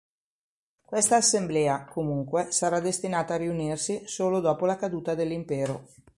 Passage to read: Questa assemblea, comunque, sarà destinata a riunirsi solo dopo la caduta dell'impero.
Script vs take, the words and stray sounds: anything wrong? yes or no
no